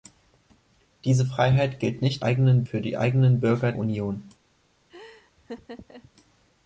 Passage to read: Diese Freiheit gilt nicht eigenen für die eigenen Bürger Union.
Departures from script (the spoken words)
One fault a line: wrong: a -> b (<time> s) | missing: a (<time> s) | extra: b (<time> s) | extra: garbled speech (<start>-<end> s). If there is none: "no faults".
no faults